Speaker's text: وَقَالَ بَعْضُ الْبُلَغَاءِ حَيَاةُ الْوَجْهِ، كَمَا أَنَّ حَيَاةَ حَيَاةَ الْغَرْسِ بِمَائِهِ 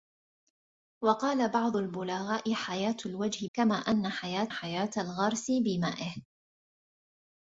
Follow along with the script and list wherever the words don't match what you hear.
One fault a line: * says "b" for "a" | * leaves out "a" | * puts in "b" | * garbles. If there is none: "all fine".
all fine